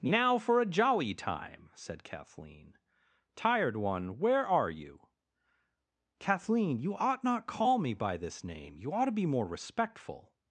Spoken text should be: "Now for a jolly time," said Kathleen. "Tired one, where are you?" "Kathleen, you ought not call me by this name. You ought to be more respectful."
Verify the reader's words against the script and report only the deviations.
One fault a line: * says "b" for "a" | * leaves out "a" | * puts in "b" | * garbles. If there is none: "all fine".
all fine